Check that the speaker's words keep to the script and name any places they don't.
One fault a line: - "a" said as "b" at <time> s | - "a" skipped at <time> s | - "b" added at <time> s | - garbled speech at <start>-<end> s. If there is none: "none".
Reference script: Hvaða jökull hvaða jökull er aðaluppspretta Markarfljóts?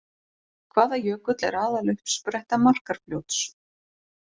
- "hvaða jökull" skipped at 1.4 s